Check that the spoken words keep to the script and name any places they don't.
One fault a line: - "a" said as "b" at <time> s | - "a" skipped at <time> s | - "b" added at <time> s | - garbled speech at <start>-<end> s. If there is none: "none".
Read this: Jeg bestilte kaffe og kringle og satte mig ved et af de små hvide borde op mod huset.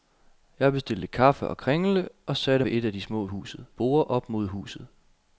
- "mig" skipped at 2.6 s
- "hvide" said as "huset" at 3.2 s